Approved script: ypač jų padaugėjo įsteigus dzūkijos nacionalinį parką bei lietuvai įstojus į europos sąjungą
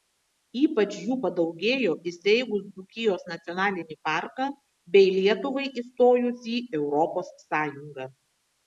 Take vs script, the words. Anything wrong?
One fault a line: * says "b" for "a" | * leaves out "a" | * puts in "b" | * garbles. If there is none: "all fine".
all fine